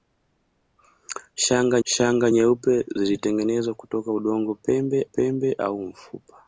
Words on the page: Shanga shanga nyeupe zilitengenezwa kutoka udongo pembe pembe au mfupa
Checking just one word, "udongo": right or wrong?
right